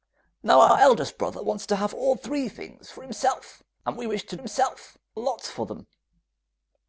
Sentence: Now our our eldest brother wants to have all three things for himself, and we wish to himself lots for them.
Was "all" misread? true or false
false